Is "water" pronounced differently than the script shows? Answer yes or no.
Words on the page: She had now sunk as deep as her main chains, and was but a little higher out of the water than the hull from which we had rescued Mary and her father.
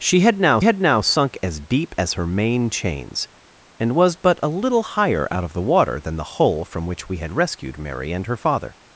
no